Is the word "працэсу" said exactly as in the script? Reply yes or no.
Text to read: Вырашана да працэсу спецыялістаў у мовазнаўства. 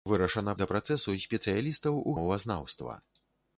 yes